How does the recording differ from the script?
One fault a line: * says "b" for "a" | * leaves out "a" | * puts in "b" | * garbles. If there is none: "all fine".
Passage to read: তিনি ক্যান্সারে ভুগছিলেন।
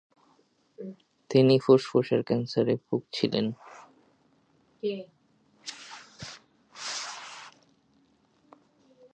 * puts in "ফুসফুসের"